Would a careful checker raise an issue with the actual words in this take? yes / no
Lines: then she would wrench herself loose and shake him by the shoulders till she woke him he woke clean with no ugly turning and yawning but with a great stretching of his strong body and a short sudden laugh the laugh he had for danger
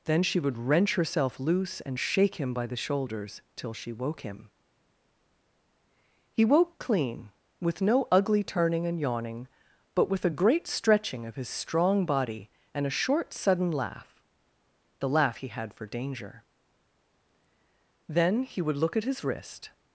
yes